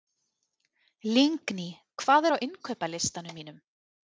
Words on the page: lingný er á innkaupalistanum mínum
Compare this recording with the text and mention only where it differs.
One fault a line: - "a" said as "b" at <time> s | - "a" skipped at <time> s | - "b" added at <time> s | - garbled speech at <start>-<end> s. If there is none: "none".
- "hvað" added at 2.0 s